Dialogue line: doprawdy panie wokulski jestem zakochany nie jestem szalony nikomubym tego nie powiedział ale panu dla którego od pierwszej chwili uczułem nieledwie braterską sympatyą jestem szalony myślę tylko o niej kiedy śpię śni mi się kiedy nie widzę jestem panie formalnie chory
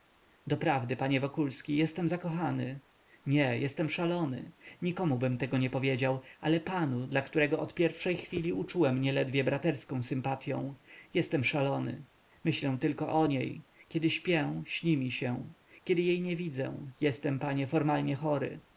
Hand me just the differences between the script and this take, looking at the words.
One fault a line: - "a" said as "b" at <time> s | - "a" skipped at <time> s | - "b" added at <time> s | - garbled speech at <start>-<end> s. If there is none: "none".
- "jej" added at 16.0 s